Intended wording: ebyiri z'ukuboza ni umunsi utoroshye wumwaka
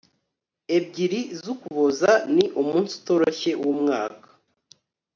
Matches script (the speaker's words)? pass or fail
pass